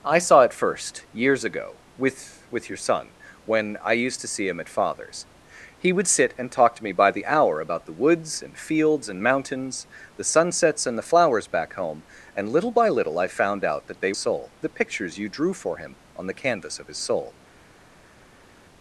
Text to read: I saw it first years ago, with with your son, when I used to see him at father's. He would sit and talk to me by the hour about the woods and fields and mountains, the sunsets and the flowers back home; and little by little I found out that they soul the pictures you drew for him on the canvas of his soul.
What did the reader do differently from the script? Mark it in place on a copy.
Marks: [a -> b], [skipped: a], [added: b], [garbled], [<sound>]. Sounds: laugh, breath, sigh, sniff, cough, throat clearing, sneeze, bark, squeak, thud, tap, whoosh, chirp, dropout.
I saw it first years ago, with with your son, when I used to see him at father's. He would sit and talk to me by the hour about the woods and fields and mountains, the sunsets and the flowers back home; and little by little I found out that they soul the pictures you drew for him on the canvas of his soul.